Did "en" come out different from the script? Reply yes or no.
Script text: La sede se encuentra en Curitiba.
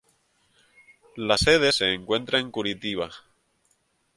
no